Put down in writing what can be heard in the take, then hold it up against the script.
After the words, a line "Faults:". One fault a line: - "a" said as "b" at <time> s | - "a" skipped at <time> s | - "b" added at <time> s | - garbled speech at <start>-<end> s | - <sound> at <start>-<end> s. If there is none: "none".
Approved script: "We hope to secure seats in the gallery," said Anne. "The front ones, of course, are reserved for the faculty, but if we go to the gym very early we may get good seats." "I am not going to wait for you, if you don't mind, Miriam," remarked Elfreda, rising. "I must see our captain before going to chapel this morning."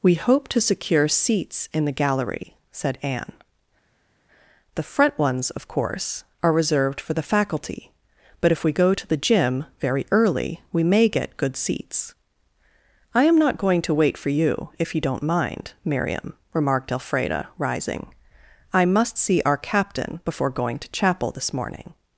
"We hope to secure seats in the gallery," said Anne. "The front ones, of course, are reserved for the faculty, but if we go to the gym very early we may get good seats." "I am not going to wait for you, if you don't mind, Miriam," remarked Elfreda, rising. "I must see our captain before going to chapel this morning."
Faults:
none